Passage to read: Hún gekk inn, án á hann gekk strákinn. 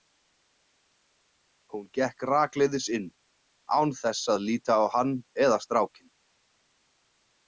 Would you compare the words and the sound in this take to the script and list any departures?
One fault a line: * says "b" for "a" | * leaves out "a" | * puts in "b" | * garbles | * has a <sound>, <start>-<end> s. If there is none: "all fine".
* puts in "rakleiðis"
* puts in "þess að líta"
* says "eða" for "gekk"